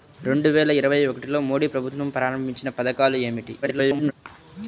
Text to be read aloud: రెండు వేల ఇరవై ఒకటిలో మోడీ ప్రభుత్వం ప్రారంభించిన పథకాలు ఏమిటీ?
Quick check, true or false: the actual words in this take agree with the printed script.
false